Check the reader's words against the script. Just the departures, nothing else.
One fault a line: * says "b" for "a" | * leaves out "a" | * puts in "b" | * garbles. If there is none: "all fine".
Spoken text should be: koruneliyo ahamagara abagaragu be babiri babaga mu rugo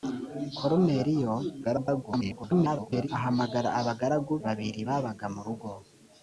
* garbles
* leaves out "be"